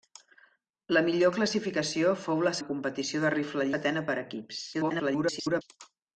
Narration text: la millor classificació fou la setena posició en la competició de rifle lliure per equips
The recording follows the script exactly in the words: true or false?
false